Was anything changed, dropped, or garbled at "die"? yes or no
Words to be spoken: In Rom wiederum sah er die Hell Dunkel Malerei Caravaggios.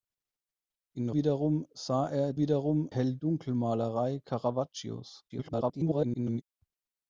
yes